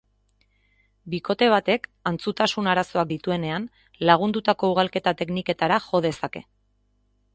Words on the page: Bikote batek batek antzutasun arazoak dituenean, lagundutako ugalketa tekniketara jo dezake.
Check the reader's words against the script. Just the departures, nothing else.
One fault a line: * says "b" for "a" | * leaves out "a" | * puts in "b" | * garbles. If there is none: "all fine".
* leaves out "batek"